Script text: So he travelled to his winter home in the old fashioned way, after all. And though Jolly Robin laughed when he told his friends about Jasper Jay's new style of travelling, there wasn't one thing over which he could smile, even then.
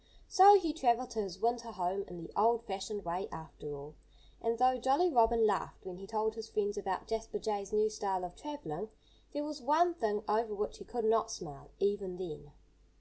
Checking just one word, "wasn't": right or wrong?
wrong